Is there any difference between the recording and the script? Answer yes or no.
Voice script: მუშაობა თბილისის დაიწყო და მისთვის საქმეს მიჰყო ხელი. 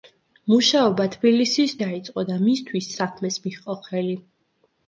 no